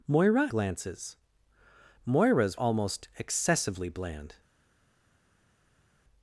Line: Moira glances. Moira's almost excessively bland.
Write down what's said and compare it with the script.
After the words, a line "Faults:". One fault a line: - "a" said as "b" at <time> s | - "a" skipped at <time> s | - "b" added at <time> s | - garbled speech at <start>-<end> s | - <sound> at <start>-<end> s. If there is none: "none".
Moira glances. Moira's almost excessively bland.
Faults:
none